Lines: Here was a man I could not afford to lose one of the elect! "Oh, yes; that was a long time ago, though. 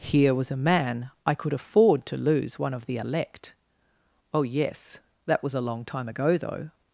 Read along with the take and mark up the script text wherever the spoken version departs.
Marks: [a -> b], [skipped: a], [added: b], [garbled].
Here was a man I could [skipped: not] afford to lose one of the elect! "Oh, yes; that was a long time ago, though.